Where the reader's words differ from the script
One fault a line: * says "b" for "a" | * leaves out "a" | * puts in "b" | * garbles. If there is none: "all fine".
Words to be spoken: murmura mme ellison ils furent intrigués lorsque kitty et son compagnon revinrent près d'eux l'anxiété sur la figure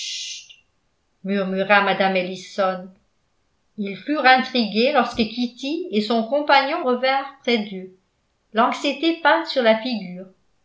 * puts in "peinte"